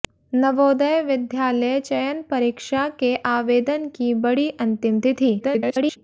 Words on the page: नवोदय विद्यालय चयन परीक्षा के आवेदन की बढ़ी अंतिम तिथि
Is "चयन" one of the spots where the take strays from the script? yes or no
no